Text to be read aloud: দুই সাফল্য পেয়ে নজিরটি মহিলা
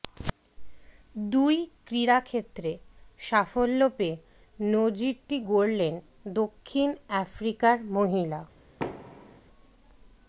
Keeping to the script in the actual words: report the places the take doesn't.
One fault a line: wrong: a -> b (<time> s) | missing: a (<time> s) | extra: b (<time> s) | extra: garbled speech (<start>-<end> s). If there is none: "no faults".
extra: ক্রীড়াক্ষেত্রে (1.9 s)
extra: গড়লেন দক্ষিণ আফ্রিকার (5.5 s)